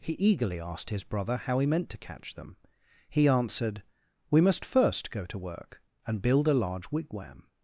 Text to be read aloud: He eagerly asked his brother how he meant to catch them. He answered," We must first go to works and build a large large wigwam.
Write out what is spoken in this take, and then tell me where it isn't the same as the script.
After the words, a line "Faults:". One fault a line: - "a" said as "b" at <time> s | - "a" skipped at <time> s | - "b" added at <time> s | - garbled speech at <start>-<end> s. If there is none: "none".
He eagerly asked his brother how he meant to catch them. He answered," We must first go to work and build a large wigwam.
Faults:
- "works" said as "work" at 5.4 s
- "large" skipped at 6.9 s